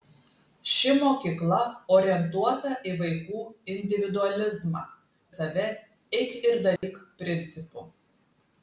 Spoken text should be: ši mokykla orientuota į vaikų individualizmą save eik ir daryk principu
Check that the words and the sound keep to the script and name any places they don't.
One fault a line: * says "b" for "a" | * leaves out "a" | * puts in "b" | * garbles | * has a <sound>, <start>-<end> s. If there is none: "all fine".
* has a dropout, 6.8-6.8 s